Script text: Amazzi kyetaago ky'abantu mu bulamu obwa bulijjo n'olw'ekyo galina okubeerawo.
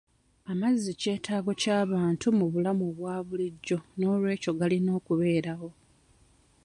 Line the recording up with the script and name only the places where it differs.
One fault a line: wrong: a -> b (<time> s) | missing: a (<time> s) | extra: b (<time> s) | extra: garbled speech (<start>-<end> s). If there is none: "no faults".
no faults